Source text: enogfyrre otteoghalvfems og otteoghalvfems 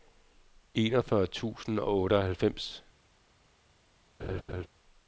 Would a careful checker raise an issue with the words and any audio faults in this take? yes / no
yes